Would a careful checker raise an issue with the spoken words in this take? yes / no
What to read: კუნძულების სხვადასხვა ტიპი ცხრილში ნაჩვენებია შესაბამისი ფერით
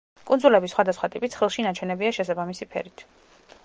no